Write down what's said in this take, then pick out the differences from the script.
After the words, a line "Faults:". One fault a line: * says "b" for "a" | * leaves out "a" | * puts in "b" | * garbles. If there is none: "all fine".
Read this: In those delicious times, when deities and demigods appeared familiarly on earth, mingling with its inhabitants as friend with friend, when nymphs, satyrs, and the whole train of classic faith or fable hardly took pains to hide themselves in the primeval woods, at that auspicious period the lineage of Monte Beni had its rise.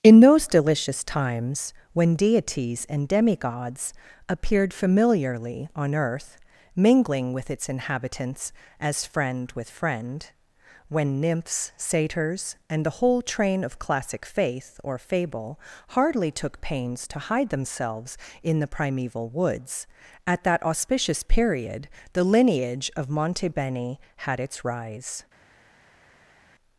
In those delicious times, when deities and demigods appeared familiarly on earth, mingling with its inhabitants as friend with friend, when nymphs, satyrs, and the whole train of classic faith or fable hardly took pains to hide themselves in the primeval woods, at that auspicious period the lineage of Monte Beni had its rise.
Faults:
all fine